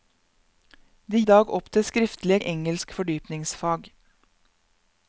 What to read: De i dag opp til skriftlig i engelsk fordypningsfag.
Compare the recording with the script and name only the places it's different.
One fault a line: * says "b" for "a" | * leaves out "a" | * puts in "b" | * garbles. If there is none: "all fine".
all fine